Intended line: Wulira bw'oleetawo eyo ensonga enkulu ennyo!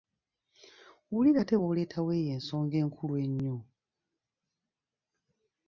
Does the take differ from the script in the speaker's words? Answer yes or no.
yes